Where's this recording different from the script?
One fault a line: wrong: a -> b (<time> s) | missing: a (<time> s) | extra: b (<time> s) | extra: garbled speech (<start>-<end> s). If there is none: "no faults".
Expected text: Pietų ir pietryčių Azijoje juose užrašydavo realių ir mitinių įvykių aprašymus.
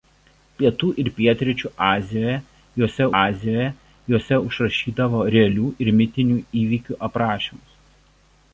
extra: Azijoje juose (3.2 s)